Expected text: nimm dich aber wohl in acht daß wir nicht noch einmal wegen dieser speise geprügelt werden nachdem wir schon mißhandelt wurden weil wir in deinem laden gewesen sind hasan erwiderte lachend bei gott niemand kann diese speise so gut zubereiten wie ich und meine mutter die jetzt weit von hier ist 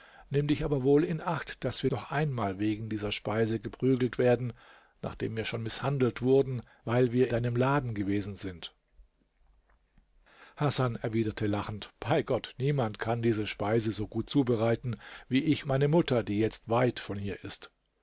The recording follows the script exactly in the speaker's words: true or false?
false